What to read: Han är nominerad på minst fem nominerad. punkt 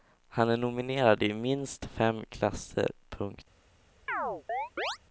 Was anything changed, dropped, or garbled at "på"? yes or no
yes